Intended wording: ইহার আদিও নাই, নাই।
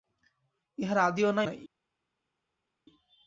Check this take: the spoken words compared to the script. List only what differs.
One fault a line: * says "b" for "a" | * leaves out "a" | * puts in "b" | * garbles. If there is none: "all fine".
all fine